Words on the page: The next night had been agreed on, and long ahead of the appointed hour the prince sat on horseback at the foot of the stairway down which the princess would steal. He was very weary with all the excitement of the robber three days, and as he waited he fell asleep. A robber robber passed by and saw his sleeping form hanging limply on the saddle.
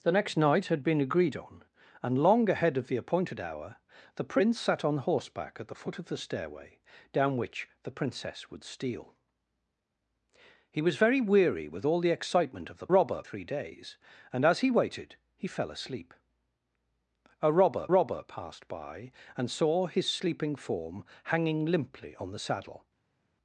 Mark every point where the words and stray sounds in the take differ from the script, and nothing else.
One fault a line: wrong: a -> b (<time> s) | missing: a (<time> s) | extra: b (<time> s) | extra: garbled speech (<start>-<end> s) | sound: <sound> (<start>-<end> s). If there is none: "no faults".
no faults